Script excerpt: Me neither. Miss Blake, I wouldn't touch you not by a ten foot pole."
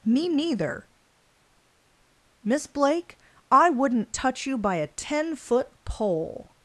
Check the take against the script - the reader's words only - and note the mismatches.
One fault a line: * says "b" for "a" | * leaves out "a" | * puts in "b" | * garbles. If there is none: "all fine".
* leaves out "not"